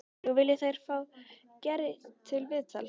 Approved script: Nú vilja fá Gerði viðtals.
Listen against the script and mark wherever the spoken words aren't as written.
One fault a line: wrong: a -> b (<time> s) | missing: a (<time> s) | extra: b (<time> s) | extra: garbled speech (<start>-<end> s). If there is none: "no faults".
extra: þeir (0.6 s)
extra: til (2.3 s)